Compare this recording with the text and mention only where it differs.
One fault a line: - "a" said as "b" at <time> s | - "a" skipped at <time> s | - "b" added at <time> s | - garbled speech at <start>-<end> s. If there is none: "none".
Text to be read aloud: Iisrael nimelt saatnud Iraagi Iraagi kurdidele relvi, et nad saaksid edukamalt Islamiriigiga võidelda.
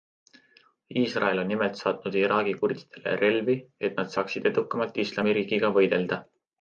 - "on" added at 1.4 s
- "Iraagi" skipped at 2.5 s